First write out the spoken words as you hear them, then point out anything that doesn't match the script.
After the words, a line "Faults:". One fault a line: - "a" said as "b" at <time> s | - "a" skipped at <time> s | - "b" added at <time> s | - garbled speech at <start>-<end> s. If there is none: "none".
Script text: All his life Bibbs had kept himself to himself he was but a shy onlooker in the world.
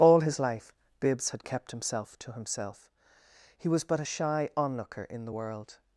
All his life Bibbs had kept himself to himself he was but a shy onlooker in the world.
Faults:
none